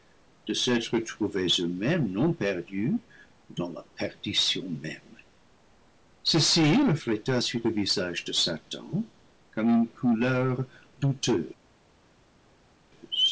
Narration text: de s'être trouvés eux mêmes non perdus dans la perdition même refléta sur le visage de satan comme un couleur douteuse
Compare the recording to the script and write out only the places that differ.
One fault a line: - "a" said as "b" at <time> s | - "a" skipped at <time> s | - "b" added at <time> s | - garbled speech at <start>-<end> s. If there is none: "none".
- "ceci" added at 6.2 s
- "un" said as "une" at 9.7 s